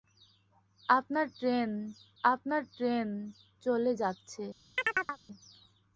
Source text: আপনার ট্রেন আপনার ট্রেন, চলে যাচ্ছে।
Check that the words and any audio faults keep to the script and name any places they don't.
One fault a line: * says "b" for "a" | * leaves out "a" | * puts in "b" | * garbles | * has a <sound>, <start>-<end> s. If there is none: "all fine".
* has a chirp, 4.8-5.2 s